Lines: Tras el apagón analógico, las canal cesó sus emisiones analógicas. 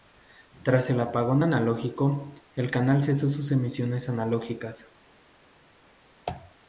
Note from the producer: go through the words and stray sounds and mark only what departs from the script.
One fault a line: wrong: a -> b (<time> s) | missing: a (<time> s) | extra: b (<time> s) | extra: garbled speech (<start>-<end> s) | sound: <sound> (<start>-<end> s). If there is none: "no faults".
wrong: las -> el (2.5 s)